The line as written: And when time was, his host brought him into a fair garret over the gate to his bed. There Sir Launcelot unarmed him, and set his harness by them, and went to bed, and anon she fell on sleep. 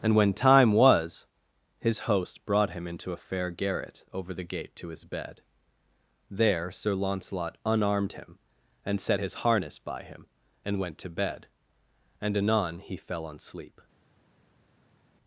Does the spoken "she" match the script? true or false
false